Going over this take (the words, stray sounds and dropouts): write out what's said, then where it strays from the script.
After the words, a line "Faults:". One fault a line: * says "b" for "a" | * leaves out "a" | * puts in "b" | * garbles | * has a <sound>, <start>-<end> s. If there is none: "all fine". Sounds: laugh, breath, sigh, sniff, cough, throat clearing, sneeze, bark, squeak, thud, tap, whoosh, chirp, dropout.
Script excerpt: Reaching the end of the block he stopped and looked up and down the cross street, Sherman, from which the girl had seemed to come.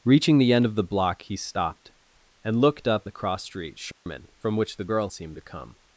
Reaching the end of the block he stopped and looked up the cross street, Sherman, from which the girl seemed to come.
Faults:
* leaves out "and down"
* has a dropout, 3.9-4.1 s
* leaves out "had"